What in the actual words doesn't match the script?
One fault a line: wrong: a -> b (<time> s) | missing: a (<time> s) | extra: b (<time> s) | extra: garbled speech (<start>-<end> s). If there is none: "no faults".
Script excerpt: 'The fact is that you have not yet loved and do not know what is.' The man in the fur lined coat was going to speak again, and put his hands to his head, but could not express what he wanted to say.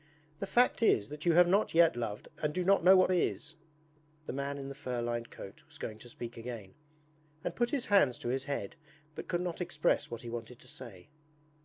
no faults